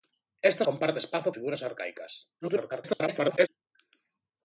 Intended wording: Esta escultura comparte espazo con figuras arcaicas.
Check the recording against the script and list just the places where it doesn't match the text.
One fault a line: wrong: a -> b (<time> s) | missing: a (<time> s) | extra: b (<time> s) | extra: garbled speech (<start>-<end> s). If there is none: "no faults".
missing: escultura (0.6 s)
missing: con (1.3 s)
extra: garbled speech (2.4-3.5 s)